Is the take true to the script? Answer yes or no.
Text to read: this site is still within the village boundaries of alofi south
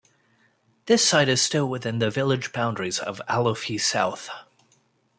yes